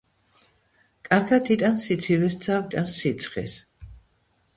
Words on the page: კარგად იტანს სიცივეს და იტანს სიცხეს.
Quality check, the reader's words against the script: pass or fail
pass